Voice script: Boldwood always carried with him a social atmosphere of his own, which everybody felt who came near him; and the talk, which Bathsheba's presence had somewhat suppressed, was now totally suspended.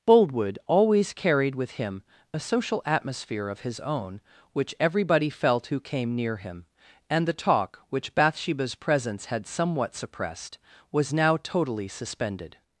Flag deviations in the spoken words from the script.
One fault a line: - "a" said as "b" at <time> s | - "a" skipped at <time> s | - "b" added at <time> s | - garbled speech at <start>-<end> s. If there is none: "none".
none